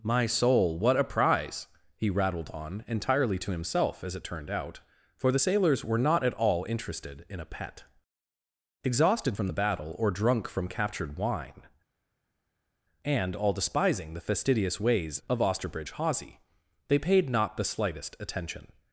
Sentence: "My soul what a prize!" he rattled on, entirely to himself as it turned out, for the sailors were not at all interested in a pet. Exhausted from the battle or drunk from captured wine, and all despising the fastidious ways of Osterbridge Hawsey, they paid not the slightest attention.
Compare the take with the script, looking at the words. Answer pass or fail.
pass